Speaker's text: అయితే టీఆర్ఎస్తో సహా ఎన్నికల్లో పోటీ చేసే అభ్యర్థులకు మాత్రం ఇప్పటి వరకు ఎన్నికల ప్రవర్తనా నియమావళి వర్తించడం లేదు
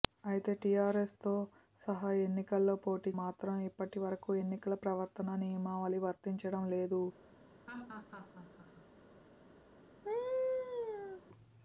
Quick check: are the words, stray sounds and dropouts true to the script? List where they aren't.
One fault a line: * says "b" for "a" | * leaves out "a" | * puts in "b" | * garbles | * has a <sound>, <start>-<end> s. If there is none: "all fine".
* leaves out "చేసే అభ్యర్థులకు"
* has a laugh, 7.7-8.9 s
* has a laugh, 10.0-11.2 s